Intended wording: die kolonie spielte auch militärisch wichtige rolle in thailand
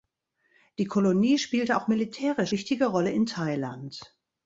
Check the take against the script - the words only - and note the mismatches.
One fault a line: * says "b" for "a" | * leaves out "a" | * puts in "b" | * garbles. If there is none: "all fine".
all fine